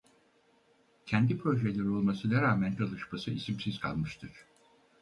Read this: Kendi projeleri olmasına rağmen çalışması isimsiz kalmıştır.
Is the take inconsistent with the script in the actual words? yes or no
no